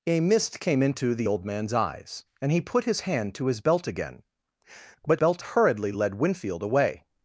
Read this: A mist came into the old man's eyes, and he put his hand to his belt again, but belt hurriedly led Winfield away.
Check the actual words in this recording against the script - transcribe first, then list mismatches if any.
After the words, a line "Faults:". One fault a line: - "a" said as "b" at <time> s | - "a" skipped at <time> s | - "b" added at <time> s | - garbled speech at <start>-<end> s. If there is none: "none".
A mist came into the old man's eyes, and he put his hand to his belt again, but belt hurriedly led Winfield away.
Faults:
none